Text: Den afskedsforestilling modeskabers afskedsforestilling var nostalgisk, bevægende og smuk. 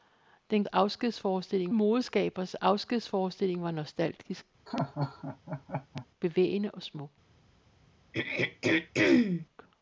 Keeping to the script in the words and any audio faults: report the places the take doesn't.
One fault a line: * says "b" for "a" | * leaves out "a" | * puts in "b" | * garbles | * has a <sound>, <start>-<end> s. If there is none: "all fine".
* has a laugh, 4.7-6.1 s
* has a throat clearing, 8.1-9.5 s